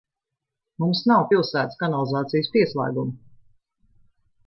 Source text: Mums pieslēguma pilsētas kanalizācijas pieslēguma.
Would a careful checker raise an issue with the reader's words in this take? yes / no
yes